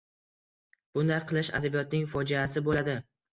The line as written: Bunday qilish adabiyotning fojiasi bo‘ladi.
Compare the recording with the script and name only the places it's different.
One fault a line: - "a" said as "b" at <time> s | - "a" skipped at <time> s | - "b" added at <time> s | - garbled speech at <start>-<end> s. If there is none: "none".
none